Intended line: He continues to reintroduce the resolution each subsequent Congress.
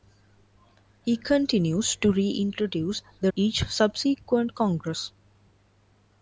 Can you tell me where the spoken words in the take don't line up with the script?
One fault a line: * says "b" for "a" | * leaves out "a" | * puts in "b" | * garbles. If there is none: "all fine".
* leaves out "resolution"